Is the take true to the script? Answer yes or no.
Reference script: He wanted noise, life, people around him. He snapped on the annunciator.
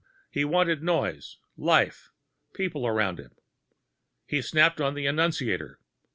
yes